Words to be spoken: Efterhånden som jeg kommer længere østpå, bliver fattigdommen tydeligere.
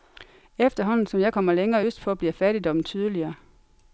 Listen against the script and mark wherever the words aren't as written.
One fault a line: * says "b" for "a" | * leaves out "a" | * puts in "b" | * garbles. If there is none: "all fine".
all fine